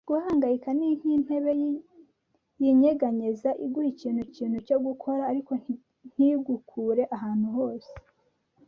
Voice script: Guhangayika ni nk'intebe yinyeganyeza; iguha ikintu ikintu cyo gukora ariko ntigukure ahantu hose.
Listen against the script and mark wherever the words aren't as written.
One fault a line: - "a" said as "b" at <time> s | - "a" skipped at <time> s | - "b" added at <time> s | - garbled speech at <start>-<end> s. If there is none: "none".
none